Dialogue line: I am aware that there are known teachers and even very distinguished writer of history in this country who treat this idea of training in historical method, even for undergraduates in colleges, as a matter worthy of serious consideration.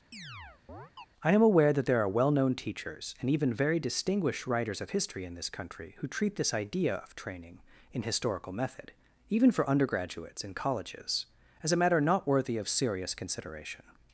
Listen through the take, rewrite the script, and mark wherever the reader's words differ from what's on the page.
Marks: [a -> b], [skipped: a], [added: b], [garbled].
I am aware that there are [added: well] known teachers and even very distinguished [writer -> writers] of history in this country who treat this idea of training in historical method, even for undergraduates in colleges, as a matter [added: not] worthy of serious consideration.